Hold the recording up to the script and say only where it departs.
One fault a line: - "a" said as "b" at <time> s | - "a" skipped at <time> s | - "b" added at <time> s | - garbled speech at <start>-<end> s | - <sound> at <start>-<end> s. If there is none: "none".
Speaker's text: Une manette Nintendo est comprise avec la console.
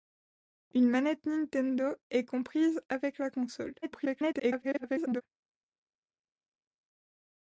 - garbled speech at 3.8-5.2 s